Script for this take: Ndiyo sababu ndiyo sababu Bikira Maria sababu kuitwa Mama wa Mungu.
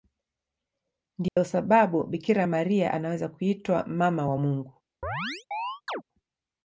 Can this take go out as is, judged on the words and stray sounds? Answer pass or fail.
fail